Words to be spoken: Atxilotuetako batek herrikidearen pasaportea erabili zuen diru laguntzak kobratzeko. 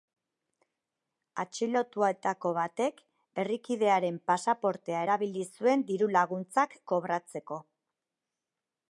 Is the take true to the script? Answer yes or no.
yes